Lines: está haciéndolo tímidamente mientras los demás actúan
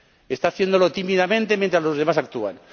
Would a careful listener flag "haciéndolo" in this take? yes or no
no